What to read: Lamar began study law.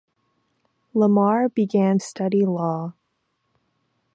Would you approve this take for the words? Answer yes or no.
yes